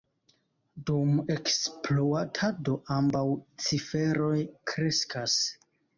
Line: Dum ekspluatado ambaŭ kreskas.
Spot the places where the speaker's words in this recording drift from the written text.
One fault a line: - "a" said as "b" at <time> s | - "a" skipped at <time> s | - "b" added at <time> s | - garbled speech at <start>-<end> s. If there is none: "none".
- "ciferoj" added at 3.7 s